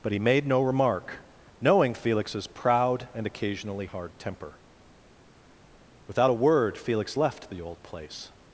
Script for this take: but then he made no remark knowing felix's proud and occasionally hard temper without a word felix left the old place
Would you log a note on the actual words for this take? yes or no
yes